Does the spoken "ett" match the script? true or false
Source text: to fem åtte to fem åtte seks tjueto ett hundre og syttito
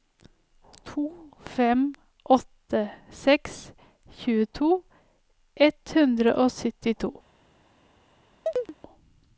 true